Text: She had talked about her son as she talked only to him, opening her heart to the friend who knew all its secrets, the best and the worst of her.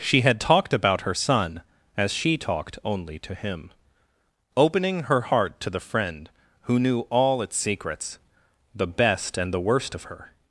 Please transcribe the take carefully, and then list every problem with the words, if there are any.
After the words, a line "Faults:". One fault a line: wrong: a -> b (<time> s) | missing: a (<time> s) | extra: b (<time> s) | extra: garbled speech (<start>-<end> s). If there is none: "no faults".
She had talked about her son as she talked only to him, opening her heart to the friend who knew all its secrets, the best and the worst of her.
Faults:
no faults